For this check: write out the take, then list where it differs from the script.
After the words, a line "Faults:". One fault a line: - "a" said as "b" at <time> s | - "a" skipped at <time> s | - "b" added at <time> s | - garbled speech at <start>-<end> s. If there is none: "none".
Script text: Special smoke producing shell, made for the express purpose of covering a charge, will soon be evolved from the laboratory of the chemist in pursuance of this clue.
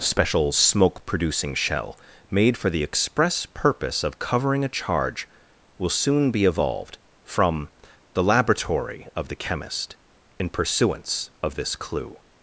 Special smoke producing shell, made for the express purpose of covering a charge, will soon be evolved from the laboratory of the chemist in pursuance of this clue.
Faults:
none